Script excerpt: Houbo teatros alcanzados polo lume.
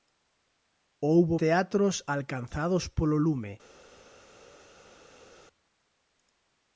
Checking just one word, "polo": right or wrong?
right